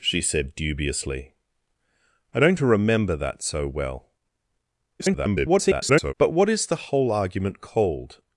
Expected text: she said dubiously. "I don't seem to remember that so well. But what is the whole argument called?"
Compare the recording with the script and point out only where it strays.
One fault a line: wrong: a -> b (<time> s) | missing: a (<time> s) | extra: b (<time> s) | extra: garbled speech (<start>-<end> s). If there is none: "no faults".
missing: seem (2.6 s)
extra: garbled speech (5.0-6.1 s)